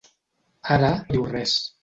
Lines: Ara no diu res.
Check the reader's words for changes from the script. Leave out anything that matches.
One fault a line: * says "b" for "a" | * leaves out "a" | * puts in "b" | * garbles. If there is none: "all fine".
all fine